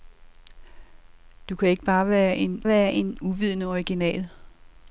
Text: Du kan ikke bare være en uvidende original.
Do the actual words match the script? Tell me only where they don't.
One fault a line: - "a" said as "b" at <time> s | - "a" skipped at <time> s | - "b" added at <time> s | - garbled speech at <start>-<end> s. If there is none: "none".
- "være en" added at 2.7 s